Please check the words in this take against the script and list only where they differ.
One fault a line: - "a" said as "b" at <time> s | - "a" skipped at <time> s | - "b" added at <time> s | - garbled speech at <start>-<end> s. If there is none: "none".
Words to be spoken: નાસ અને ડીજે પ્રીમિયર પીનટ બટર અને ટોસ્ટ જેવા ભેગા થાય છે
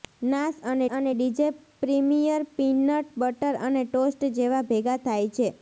- "અને" added at 0.9 s